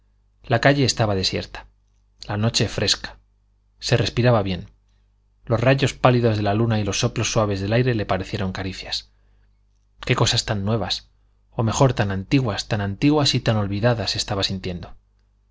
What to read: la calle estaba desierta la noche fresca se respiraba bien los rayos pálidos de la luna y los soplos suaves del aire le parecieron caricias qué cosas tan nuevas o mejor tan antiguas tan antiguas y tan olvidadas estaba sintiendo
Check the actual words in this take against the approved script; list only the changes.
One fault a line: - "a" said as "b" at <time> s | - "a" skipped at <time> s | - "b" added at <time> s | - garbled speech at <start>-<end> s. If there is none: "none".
none